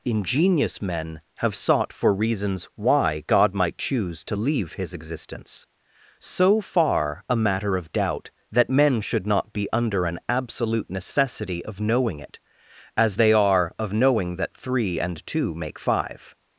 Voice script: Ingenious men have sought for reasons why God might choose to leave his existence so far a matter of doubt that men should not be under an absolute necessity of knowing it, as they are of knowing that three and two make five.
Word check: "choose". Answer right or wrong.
right